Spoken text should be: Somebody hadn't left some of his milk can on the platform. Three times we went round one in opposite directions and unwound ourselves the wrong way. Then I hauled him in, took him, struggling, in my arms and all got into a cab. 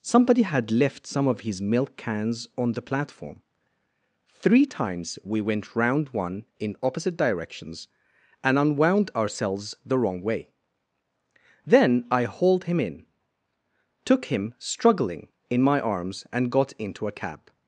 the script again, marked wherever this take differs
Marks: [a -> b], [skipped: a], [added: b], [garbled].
Somebody [hadn't -> had] left some of his milk [can -> cans] on the platform. Three times we went round one in opposite directions and unwound ourselves the wrong way. Then I hauled him in, took him, struggling, in my arms and [skipped: all] got into a cab.